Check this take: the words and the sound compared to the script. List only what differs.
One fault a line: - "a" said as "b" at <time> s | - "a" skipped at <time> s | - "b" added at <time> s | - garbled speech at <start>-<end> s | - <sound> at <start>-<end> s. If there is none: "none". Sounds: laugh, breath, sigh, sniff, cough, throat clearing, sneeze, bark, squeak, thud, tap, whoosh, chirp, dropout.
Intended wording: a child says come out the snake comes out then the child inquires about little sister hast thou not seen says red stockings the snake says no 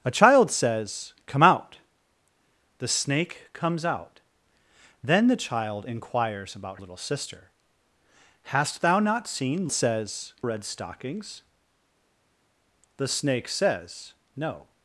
none